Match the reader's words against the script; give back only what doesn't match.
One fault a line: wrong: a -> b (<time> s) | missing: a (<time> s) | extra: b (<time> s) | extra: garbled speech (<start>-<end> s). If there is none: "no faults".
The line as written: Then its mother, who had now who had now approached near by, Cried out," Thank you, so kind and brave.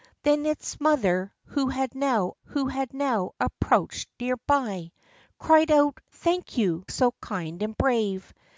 no faults